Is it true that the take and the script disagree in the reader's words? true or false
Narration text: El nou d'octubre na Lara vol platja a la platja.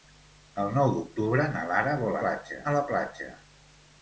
false